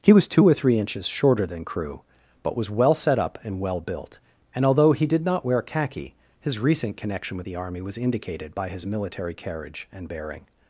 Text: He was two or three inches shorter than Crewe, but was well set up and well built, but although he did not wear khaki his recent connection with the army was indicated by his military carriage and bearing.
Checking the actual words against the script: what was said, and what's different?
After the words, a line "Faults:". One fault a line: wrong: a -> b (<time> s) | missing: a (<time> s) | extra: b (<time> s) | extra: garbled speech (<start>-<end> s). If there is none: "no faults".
He was two or three inches shorter than Crewe, but was well set up and well built, and although he did not wear khaki his recent connection with the army was indicated by his military carriage and bearing.
Faults:
wrong: but -> and (4.5 s)